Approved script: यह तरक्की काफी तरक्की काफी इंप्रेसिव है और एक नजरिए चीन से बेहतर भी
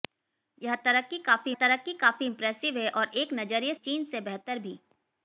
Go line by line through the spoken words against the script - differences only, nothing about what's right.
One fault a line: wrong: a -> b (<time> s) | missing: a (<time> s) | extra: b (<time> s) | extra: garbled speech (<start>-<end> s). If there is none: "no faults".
no faults